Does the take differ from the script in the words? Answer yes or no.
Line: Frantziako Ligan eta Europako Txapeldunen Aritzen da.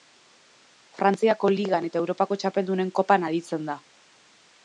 yes